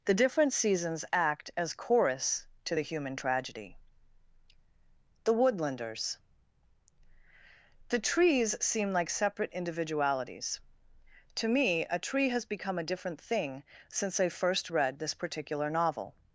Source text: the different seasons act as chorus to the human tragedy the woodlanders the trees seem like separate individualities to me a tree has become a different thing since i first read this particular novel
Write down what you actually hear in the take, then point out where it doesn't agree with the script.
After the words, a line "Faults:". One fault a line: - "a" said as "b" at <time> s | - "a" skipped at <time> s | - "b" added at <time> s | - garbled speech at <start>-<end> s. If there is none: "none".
the different seasons act as chorus to the human tragedy the woodlanders the trees seem like separate individualities to me a tree has become a different thing since i first read this particular novel
Faults:
none